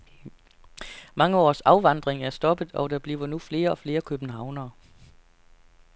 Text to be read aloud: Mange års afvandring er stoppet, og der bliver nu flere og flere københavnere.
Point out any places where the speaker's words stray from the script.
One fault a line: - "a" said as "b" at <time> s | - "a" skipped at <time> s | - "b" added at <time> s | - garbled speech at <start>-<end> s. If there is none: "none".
none